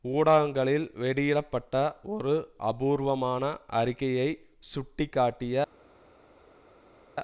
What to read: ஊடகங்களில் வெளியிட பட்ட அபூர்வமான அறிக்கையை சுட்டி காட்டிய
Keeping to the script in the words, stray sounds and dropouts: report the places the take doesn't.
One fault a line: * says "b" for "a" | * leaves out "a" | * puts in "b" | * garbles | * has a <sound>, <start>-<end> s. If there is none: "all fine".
* puts in "ஒரு"